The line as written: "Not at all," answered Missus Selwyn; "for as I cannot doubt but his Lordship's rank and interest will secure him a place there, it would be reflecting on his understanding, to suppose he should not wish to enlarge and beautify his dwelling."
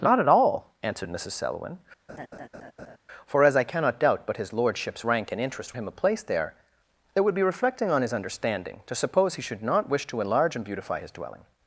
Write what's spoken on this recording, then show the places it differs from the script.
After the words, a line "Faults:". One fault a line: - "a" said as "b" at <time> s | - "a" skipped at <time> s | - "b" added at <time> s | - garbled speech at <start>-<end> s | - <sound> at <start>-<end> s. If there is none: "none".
"Not at all," answered Missus Selwyn; "for as I cannot doubt but his Lordship's rank and interest him a place there, it would be reflecting on his understanding, to suppose he should not wish to enlarge and beautify his dwelling."
Faults:
- laugh at 2.1-3.0 s
- "will secure" skipped at 5.8 s